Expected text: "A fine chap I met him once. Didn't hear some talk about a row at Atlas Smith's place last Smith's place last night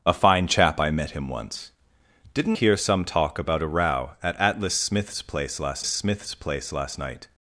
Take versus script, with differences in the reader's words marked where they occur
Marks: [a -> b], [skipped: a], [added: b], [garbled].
"A fine chap I met him once. Didn't hear some talk about a row at Atlas Smith's place last Smith's place last night